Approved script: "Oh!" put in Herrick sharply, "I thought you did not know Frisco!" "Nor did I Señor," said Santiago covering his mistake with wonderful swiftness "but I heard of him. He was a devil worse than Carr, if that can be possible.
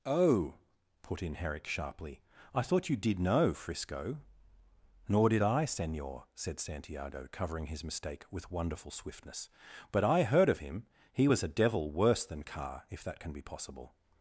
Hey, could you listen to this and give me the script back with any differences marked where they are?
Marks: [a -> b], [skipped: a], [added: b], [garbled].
"Oh!" put in Herrick sharply, "I thought you did [skipped: not] know Frisco!" "Nor did I Señor," said Santiago covering his mistake with wonderful swiftness "but I heard of him. He was a devil worse than Carr, if that can be possible.